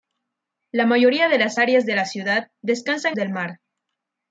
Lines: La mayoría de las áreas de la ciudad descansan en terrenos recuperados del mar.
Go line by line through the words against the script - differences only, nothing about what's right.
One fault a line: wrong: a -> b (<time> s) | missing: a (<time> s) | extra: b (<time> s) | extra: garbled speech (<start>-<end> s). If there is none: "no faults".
missing: en terrenos recuperados (3.2 s)